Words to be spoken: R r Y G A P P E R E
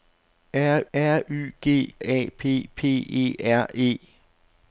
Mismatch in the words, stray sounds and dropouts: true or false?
false